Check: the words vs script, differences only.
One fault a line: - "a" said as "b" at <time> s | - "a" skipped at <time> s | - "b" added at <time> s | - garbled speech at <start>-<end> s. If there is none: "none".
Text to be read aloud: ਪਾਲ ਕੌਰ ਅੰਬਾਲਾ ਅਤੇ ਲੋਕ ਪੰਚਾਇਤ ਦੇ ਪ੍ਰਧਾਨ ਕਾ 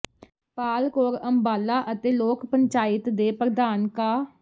none